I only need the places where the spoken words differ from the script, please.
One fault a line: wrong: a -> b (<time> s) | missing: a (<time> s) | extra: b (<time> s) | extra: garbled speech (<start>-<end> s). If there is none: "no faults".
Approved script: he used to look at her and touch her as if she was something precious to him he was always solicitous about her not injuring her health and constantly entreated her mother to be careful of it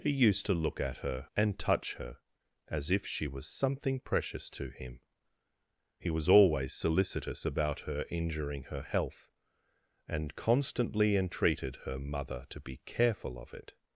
missing: not (8.1 s)